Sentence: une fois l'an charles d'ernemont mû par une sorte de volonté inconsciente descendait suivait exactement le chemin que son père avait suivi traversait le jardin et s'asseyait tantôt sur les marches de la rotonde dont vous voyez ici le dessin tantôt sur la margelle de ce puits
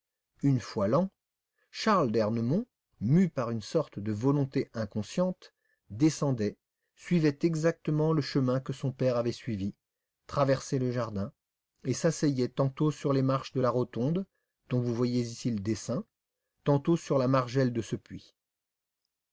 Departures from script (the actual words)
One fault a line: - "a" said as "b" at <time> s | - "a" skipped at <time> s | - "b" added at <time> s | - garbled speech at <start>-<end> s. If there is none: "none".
none